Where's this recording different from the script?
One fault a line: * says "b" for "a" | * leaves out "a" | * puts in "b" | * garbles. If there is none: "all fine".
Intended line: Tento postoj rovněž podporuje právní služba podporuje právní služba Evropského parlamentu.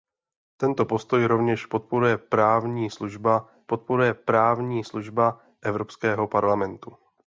all fine